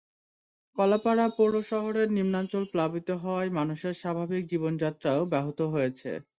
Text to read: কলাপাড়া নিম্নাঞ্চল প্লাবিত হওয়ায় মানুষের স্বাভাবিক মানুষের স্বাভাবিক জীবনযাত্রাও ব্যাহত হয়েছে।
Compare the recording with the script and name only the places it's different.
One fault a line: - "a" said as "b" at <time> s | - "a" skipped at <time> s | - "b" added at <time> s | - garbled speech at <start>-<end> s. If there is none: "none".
- "পৌর শহরের" added at 1.4 s
- "মানুষের স্বাভাবিক" skipped at 4.4 s